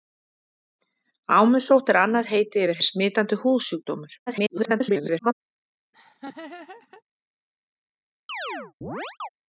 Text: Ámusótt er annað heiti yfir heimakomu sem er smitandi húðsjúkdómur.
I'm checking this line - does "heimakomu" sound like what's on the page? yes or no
no